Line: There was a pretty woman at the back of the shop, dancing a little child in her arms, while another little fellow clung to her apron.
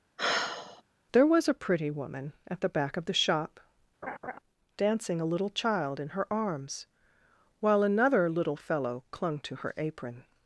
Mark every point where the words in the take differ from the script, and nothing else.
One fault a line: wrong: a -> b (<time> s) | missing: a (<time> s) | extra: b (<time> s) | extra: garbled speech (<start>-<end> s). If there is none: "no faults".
no faults